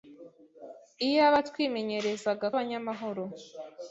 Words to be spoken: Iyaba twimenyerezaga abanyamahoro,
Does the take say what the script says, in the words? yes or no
yes